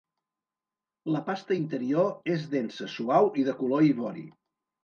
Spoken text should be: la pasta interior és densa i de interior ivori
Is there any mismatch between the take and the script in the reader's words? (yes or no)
yes